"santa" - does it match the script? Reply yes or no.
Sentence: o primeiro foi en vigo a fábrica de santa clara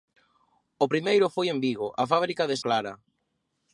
no